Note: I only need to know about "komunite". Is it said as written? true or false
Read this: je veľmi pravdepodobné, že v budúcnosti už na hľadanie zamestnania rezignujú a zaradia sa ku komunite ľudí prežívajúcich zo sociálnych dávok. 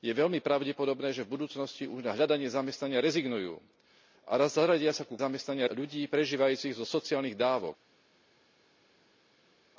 false